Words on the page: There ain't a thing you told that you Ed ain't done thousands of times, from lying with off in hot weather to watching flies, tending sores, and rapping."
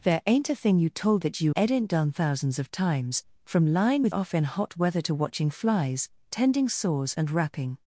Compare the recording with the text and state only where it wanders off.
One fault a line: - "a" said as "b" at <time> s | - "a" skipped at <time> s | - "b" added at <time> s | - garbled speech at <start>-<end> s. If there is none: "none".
none